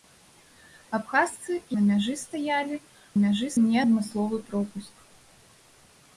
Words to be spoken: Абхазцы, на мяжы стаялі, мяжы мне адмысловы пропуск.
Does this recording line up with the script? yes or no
yes